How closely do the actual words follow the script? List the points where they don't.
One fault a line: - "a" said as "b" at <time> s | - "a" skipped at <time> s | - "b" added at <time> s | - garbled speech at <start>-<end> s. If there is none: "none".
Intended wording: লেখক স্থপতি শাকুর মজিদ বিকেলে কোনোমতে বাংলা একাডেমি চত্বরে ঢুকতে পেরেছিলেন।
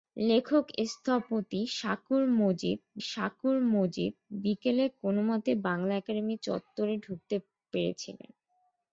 - "শাকুর মজিদ" added at 3.0 s